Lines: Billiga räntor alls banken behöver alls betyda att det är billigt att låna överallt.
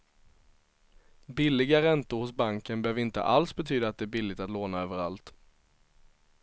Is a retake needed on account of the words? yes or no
yes